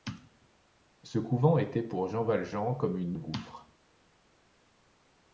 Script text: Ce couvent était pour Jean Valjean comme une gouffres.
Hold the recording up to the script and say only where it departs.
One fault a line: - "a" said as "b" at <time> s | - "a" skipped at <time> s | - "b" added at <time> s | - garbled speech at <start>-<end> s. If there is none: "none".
none